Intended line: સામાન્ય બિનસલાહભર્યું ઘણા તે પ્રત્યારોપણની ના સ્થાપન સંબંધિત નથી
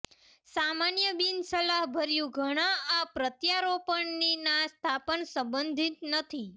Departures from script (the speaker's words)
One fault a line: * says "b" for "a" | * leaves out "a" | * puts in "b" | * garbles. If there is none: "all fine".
* says "આ" for "તે"